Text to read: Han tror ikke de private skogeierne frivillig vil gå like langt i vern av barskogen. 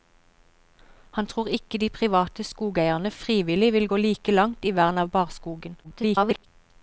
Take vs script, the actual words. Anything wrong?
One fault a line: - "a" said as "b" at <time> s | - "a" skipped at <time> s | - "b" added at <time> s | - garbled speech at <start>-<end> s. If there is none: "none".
- garbled speech at 5.8-6.5 s